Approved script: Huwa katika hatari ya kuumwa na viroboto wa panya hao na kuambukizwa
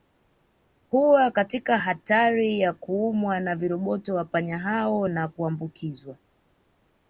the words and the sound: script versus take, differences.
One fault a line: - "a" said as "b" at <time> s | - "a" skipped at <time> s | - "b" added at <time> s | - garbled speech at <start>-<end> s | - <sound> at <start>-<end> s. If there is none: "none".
none